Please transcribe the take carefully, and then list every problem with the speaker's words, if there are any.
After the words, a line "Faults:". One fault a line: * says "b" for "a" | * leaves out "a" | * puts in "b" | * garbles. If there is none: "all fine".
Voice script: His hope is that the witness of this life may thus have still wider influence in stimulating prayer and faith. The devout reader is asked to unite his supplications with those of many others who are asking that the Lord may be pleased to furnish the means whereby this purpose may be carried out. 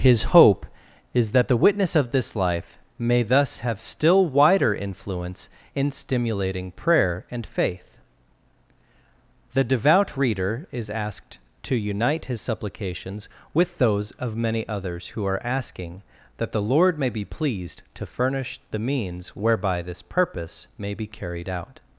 His hope is that the witness of this life may thus have still wider influence in stimulating prayer and faith. The devout reader is asked to unite his supplications with those of many others who are asking that the Lord may be pleased to furnish the means whereby this purpose may be carried out.
Faults:
all fine